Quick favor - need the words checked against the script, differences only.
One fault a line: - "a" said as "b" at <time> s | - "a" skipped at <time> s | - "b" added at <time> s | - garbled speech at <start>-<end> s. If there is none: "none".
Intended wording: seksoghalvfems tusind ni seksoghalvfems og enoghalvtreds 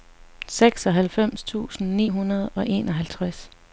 - "seksoghalvfems" said as "hundrede" at 2.1 s